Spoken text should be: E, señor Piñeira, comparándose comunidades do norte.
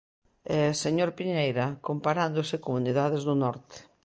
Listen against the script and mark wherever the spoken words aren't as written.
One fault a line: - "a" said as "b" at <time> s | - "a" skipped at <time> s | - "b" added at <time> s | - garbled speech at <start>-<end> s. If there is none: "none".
none